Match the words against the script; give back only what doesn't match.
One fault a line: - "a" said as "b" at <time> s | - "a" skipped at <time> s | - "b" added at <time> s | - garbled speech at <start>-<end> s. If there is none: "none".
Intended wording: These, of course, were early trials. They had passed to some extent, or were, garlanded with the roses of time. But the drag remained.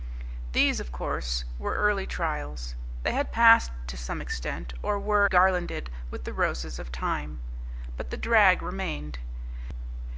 none